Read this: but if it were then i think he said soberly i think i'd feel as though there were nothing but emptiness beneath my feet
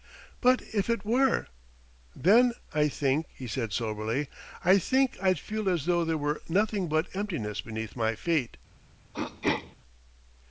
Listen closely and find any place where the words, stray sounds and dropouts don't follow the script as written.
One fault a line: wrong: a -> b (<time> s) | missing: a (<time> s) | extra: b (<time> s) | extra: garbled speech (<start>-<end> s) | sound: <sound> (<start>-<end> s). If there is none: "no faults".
sound: throat clearing (9.1-9.8 s)